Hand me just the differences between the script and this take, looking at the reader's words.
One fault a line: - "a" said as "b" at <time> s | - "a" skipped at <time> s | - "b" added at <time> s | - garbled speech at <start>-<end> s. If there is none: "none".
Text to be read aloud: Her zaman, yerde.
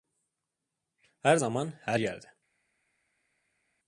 - "her" added at 1.8 s